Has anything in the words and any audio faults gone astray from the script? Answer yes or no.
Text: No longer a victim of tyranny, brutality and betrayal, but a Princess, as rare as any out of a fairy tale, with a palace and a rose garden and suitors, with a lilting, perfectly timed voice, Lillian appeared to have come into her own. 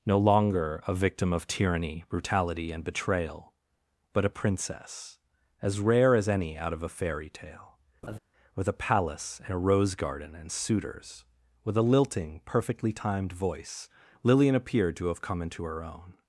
yes